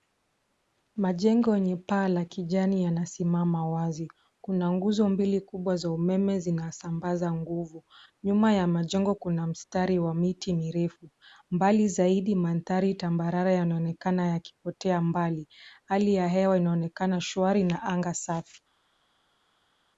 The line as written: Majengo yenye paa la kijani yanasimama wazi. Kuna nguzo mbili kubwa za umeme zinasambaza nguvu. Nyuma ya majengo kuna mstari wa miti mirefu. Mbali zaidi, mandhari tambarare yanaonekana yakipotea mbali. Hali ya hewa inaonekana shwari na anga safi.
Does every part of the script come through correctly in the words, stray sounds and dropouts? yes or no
yes